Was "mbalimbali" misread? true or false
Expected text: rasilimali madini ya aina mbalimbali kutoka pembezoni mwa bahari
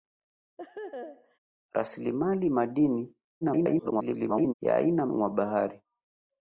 true